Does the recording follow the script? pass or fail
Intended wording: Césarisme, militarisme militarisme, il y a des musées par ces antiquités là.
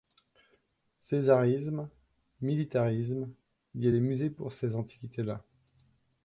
fail